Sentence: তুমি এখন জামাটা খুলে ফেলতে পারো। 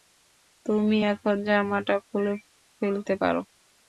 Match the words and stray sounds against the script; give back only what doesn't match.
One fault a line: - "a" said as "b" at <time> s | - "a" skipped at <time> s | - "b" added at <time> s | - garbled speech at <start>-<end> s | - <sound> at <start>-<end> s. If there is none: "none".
none